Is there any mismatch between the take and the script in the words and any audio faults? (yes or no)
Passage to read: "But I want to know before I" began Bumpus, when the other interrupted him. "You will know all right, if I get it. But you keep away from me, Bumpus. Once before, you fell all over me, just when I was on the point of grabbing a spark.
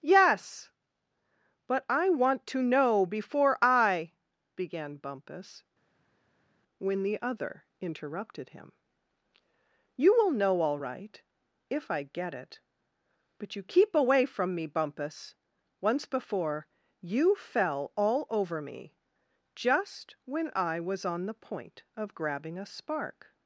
yes